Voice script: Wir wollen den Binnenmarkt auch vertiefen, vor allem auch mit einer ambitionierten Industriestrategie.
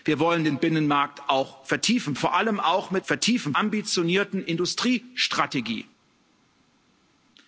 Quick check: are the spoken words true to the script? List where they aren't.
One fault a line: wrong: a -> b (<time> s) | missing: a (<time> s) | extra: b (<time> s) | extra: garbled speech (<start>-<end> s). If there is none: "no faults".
wrong: einer -> vertiefen (3.0 s)